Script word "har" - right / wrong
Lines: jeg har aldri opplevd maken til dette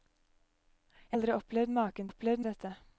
wrong